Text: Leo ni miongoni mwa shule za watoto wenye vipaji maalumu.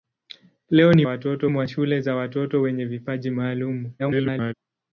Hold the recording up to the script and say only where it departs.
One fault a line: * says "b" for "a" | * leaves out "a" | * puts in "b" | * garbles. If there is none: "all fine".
* says "watoto" for "miongoni"
* garbles